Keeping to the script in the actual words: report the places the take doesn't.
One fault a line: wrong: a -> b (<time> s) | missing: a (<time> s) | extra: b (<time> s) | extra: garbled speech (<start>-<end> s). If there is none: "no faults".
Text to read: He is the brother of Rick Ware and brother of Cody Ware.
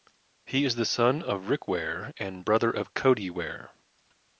wrong: brother -> son (0.8 s)